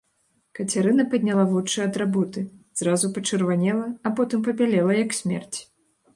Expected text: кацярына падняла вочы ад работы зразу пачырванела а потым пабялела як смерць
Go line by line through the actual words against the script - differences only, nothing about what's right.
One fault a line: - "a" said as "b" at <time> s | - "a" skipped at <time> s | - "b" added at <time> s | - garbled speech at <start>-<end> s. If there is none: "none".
none